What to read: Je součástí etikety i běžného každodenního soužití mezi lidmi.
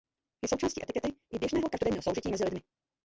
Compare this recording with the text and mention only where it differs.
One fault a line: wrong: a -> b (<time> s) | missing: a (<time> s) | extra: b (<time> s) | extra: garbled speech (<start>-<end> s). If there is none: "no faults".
no faults